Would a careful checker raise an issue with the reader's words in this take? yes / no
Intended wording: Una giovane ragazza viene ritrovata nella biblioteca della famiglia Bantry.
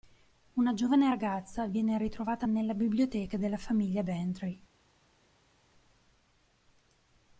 no